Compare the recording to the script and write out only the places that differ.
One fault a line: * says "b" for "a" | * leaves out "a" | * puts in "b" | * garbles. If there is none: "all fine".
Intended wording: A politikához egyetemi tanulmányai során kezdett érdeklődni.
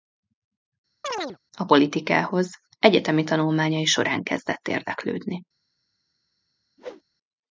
all fine